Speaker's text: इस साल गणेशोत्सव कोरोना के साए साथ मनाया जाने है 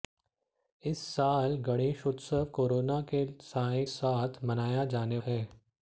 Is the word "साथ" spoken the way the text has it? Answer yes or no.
yes